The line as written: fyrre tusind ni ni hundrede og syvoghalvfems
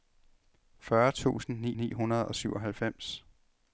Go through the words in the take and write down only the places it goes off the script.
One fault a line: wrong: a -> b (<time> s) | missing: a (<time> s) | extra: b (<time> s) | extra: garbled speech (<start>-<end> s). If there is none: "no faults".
no faults